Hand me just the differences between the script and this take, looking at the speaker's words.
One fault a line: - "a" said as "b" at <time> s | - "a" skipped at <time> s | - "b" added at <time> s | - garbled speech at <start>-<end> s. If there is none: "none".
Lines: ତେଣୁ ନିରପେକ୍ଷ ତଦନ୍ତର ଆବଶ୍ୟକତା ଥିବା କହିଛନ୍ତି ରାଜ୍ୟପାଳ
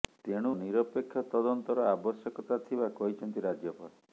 none